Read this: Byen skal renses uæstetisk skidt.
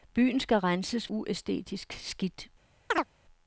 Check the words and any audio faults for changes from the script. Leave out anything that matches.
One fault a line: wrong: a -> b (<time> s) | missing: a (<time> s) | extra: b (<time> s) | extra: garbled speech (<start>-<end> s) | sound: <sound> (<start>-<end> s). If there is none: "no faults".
sound: chirp (2.9-3.1 s)